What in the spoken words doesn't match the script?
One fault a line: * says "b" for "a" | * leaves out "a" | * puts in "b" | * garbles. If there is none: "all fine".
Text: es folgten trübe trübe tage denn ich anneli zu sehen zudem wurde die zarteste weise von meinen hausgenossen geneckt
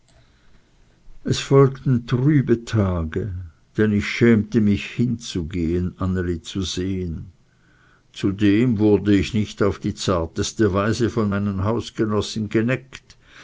* leaves out "trübe"
* puts in "schämte mich hinzugehen"
* puts in "ich nicht auf"